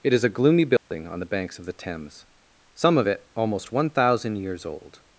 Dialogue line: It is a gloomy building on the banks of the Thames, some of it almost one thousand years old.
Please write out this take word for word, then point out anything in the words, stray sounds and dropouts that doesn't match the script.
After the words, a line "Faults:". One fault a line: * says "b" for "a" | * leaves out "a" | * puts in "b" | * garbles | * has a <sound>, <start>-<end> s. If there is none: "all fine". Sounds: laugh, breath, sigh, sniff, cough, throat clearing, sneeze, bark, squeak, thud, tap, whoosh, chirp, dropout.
It is a gloomy building on the banks of the Thames, some of it almost one thousand years old.
Faults:
* has a dropout, 0.8-0.9 s